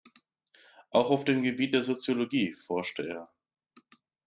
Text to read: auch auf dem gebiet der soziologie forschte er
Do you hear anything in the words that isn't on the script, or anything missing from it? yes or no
no